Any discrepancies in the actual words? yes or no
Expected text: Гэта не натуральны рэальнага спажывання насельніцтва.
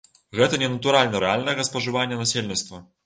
no